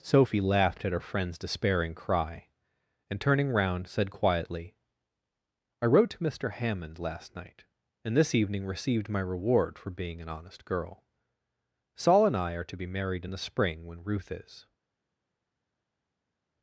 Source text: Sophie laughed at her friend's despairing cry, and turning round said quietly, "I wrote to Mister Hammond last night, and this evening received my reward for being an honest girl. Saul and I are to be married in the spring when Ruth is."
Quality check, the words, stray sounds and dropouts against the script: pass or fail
pass